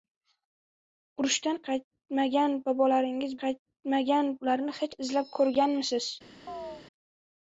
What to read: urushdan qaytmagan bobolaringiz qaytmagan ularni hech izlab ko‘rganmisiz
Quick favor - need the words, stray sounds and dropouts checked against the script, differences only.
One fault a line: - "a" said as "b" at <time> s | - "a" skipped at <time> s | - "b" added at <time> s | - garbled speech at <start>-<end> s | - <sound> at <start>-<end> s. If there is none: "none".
- chirp at 6.5-6.8 s